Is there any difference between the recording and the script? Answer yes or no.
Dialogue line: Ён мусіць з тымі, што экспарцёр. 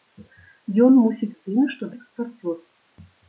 no